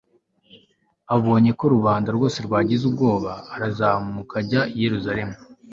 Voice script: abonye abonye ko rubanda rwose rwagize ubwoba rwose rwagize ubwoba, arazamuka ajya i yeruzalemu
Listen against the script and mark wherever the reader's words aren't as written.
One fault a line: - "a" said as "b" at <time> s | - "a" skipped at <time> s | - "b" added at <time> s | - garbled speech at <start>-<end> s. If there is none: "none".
- "abonye" skipped at 1.5 s
- "rwose rwagize ubwoba" skipped at 3.3 s